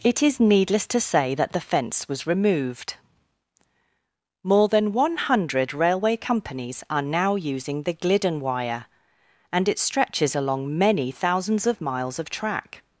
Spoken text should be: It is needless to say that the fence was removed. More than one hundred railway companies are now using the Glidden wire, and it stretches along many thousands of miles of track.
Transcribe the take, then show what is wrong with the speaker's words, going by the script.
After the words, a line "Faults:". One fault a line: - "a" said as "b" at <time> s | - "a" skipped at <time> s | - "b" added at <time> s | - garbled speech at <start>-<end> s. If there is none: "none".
It is needless to say that the fence was removed. More than one hundred railway companies are now using the Glidden wire, and it stretches along many thousands of miles of track.
Faults:
none